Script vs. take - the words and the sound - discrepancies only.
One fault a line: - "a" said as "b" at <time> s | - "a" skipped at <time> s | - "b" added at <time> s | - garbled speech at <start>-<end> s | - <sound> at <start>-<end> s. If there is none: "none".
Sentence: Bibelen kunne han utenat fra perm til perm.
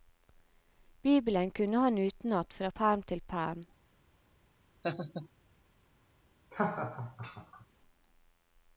- laugh at 4.8-5.3 s
- laugh at 6.5-7.7 s